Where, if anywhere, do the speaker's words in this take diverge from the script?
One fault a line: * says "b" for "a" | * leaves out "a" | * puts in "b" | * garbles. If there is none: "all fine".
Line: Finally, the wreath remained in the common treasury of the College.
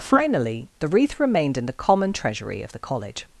all fine